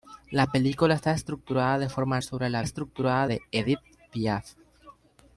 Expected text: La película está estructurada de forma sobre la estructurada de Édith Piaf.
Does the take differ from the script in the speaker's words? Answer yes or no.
no